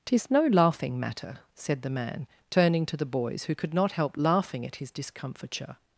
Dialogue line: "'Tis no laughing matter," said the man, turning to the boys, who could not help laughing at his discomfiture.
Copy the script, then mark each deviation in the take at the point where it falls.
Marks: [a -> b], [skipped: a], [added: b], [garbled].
"'Tis no laughing matter," said the man, turning to the boys, who could not help laughing at his discomfiture.